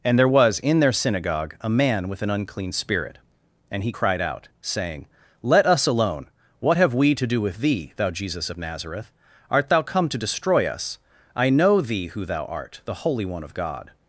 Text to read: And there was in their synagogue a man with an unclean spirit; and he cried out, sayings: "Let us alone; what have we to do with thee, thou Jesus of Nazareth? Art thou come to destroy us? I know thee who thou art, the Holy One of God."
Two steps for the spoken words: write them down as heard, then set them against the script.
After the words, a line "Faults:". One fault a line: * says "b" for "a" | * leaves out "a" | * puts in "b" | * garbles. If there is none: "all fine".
And there was in their synagogue a man with an unclean spirit; and he cried out, saying: "Let us alone; what have we to do with thee, thou Jesus of Nazareth? Art thou come to destroy us? I know thee who thou art, the Holy One of God."
Faults:
* says "saying" for "sayings"